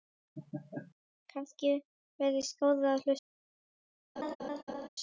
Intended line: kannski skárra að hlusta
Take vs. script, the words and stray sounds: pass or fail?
fail